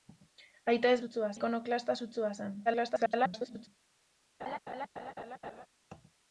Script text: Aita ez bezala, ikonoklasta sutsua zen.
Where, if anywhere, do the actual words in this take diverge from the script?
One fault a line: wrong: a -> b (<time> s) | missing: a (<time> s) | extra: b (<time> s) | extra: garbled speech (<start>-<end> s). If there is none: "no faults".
wrong: bezala -> sutsua (1.0 s)
extra: garbled speech (2.7-3.7 s)